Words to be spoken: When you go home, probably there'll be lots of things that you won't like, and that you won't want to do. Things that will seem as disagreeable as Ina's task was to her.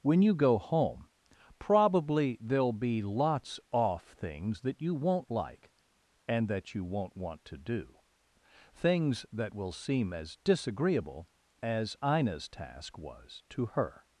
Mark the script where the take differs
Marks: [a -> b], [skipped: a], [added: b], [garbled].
When you go home, probably there'll be lots [of -> off] things that you won't like, and that you won't want to do. Things that will seem as disagreeable as Ina's task was to her.